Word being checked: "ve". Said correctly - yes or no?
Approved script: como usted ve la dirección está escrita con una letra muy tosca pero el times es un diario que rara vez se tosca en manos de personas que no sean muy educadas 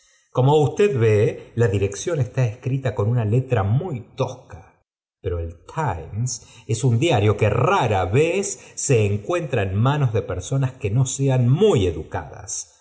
yes